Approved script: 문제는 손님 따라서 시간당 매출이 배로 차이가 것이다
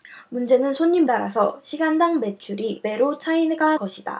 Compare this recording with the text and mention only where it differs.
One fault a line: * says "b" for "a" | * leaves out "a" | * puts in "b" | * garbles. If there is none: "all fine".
all fine